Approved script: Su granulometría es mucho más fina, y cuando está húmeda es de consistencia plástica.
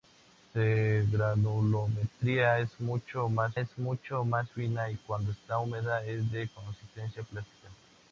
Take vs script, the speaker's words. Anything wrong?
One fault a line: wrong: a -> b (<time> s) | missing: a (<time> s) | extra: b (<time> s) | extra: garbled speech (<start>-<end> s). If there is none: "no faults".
extra: es mucho más (3.6 s)